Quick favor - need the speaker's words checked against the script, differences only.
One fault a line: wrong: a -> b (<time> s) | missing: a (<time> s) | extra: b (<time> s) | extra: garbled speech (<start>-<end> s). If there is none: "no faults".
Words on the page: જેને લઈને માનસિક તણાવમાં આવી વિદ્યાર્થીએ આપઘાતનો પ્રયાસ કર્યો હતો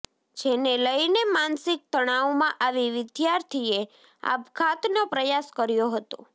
no faults